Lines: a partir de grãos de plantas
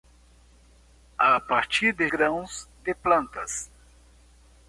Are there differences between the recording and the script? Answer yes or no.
no